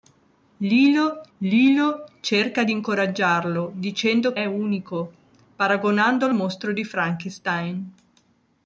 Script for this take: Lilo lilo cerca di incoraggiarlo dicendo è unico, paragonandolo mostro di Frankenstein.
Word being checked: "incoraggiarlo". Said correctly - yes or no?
yes